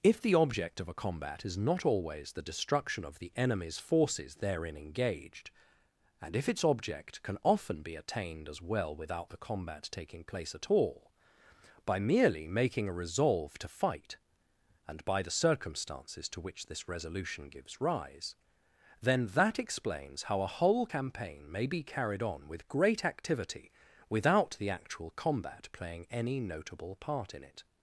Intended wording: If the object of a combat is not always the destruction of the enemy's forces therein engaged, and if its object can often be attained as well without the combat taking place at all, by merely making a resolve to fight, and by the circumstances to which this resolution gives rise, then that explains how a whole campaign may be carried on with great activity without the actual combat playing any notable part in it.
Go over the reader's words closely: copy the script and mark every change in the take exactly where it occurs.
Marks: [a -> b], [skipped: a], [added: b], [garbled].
If the object of a combat is not always the destruction of the enemy's forces therein engaged, and if its object can often be attained as well without the combat taking place at all, by merely making a resolve to fight, and by the circumstances to which this resolution gives rise, then that explains how a whole campaign may be carried on with great activity without the actual combat playing any notable part in it.